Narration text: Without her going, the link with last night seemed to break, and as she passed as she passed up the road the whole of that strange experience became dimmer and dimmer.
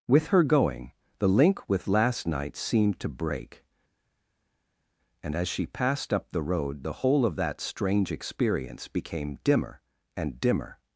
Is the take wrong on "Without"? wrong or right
wrong